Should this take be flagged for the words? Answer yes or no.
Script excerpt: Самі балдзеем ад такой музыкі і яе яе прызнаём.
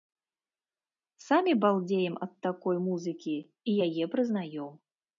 yes